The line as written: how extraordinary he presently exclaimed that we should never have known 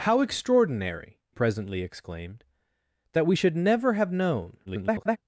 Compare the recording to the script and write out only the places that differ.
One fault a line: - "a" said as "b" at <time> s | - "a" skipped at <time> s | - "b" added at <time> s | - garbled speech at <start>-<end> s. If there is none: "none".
- "he" skipped at 1.2 s
- garbled speech at 4.7-5.2 s